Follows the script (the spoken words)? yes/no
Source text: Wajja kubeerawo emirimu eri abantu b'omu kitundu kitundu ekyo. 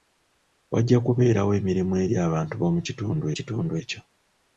yes